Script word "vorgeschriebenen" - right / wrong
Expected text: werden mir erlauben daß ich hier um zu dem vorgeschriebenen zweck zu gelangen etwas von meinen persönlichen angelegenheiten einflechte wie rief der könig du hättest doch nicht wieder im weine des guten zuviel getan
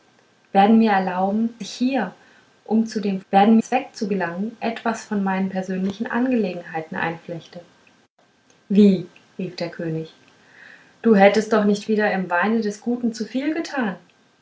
wrong